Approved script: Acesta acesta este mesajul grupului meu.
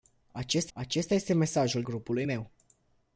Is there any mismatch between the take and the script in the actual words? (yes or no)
no